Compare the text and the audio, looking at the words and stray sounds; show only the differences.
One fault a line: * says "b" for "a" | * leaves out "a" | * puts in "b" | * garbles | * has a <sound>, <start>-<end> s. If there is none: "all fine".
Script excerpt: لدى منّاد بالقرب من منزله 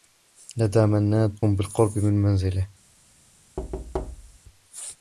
* has a thud, 3.6-4.4 s